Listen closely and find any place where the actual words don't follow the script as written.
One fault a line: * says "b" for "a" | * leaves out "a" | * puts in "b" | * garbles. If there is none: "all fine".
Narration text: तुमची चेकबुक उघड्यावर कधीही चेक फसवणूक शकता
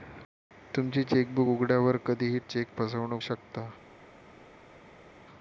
all fine